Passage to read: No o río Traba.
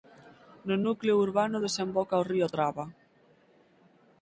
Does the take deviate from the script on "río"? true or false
false